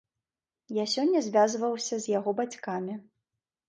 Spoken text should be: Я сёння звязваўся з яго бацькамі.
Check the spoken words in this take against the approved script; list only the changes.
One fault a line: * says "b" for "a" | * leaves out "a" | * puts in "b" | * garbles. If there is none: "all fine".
all fine